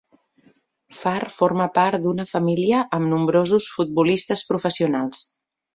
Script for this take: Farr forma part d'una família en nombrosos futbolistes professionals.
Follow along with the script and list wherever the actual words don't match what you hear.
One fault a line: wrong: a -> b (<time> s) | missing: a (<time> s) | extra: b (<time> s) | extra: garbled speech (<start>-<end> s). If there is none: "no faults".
wrong: en -> amb (3.0 s)